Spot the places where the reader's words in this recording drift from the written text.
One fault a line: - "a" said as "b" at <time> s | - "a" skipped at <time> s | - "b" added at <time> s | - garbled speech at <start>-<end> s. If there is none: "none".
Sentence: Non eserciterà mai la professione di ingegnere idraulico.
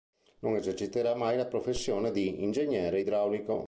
none